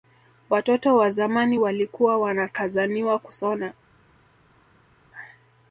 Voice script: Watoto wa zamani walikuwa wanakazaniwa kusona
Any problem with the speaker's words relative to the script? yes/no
no